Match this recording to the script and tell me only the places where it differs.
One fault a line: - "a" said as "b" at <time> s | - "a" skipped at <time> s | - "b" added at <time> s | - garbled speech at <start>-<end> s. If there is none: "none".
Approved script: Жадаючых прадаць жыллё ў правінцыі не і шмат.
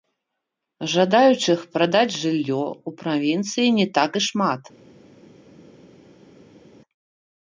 - "так" added at 4.0 s